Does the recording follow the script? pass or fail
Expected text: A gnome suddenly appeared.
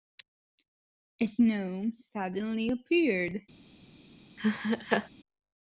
pass